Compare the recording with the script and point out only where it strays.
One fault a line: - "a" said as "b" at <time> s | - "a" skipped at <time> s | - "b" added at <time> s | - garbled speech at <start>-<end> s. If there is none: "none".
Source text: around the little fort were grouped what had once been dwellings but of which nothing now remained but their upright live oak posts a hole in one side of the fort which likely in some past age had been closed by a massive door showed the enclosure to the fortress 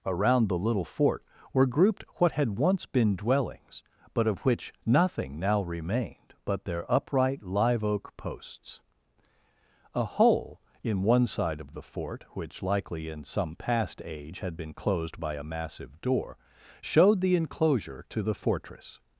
none